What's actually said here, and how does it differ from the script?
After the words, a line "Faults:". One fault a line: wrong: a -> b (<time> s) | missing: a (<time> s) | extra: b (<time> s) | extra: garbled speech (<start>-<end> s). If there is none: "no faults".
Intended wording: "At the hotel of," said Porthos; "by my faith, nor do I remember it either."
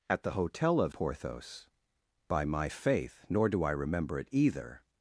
"At the hotel of," Porthos; "by my faith, nor do I remember it either."
Faults:
missing: said (0.9 s)